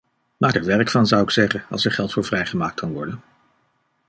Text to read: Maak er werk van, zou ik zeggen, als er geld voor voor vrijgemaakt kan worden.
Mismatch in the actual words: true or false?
true